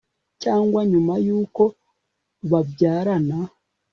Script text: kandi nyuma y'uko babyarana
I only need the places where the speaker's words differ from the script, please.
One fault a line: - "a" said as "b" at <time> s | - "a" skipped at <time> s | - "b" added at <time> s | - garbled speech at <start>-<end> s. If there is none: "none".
- "kandi" said as "cyangwa" at 0.4 s